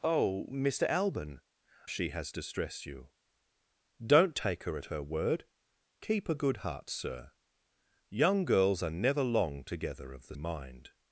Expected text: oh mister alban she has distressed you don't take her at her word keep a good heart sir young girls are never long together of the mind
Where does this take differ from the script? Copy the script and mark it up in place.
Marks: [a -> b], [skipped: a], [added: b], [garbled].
oh mister alban she has distressed you don't take her at her word keep a good heart sir young girls are never long together of the mind